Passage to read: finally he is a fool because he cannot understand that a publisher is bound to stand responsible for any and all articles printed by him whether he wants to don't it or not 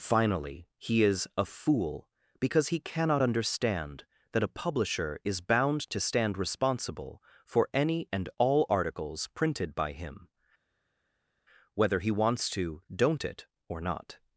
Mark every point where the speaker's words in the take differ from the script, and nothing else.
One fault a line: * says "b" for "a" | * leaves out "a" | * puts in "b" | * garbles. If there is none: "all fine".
all fine